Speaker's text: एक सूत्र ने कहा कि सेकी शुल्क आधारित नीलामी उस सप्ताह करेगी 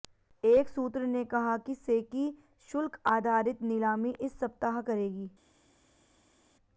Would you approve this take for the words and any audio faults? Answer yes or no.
no